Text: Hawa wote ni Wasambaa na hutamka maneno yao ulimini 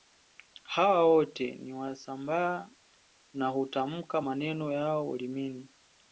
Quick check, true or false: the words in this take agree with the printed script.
true